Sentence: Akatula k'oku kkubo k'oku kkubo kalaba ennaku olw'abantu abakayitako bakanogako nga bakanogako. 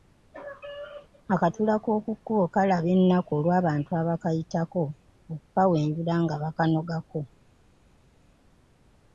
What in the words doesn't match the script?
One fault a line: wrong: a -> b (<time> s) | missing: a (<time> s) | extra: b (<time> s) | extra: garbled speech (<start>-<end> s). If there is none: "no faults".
missing: k'oku kkubo (2.5 s)
wrong: bakanogako -> okukawenjula (5.3 s)